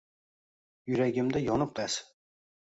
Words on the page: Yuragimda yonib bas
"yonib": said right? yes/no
yes